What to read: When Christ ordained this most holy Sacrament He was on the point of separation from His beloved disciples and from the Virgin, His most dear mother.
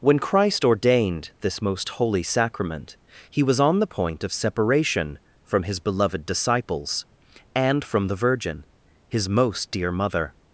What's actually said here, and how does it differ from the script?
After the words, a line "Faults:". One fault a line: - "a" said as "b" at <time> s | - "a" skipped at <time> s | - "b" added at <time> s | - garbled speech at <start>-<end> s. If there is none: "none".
When Christ ordained this most holy Sacrament He was on the point of separation from His beloved disciples and from the Virgin, His most dear mother.
Faults:
none